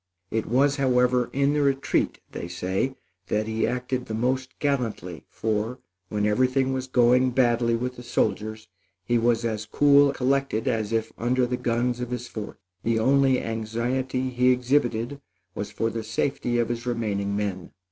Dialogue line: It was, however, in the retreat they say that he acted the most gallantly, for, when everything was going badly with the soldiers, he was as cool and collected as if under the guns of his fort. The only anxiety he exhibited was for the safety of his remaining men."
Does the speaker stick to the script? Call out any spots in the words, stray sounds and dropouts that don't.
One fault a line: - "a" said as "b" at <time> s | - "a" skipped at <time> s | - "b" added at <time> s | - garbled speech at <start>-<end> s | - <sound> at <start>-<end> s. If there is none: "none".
- "and" skipped at 10.1 s